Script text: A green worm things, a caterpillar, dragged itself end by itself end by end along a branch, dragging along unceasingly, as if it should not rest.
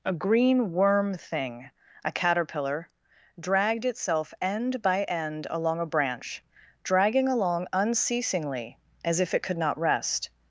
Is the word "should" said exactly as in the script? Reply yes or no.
no